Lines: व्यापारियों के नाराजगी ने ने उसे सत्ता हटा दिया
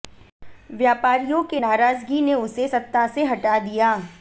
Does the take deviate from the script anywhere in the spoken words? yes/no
yes